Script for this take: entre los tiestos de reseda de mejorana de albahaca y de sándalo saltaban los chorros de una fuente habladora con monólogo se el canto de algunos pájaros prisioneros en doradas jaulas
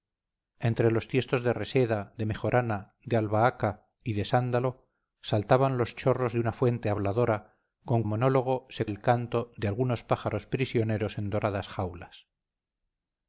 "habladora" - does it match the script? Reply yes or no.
yes